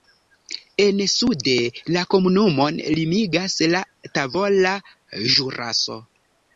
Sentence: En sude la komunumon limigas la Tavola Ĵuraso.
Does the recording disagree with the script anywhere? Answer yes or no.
no